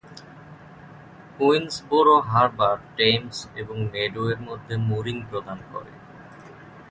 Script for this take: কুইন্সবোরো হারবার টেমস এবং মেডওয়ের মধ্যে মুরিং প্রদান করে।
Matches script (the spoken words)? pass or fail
pass